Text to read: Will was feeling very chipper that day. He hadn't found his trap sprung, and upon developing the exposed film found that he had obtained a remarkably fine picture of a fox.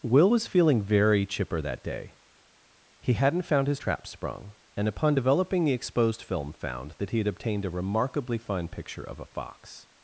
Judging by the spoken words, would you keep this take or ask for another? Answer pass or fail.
pass